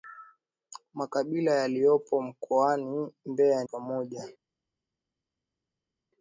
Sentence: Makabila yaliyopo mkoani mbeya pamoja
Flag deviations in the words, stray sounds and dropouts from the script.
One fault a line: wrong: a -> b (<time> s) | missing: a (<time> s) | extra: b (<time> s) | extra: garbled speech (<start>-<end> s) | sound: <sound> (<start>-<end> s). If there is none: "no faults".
no faults